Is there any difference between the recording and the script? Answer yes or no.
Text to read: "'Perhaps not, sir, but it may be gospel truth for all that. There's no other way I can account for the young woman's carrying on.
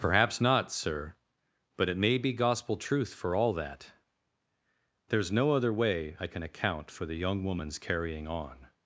no